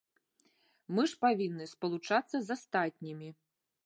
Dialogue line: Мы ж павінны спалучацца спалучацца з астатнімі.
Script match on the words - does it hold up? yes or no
no